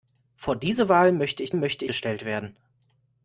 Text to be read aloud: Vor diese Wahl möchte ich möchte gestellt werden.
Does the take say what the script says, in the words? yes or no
yes